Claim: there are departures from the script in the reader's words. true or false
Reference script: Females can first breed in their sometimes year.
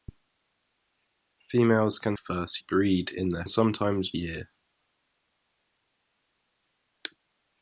false